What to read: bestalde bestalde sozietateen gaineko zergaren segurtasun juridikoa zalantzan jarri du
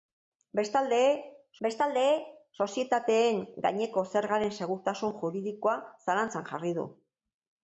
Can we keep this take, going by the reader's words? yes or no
yes